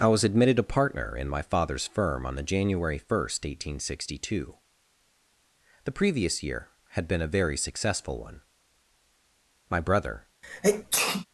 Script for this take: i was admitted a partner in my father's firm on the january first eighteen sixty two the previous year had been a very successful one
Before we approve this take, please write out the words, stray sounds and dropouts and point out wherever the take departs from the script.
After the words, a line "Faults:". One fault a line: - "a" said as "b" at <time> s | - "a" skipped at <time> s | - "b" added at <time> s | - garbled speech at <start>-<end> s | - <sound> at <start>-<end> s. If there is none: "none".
i was admitted a partner in my father's firm on the january first eighteen sixty two the previous year had been a very successful one my brother
Faults:
- "my brother" added at 9.7 s
- sneeze at 10.4-11.3 s